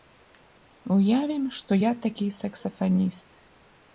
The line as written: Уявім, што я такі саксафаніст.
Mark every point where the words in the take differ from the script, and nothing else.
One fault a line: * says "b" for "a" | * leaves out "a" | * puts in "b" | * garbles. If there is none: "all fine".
all fine